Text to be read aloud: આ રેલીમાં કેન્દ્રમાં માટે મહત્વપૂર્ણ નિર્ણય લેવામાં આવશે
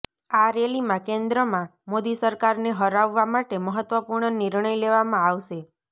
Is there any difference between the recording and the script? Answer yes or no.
yes